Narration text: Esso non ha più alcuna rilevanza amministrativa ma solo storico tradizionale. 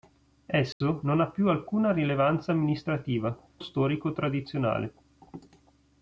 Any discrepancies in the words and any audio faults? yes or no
yes